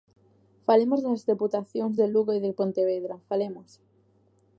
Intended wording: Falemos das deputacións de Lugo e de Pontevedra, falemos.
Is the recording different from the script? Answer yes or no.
no